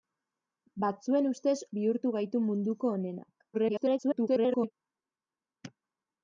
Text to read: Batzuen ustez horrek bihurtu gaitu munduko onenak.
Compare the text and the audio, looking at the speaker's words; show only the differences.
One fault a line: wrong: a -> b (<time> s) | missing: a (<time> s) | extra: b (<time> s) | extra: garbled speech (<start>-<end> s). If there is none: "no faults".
missing: horrek (1.5 s)
extra: garbled speech (3.5-4.7 s)